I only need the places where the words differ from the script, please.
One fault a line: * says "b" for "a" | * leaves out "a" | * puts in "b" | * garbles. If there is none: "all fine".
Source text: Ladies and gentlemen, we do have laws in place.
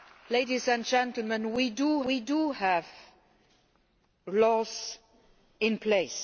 * puts in "we do"